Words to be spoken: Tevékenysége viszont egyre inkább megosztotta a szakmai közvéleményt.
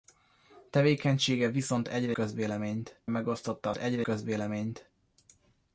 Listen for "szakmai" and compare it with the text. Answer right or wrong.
wrong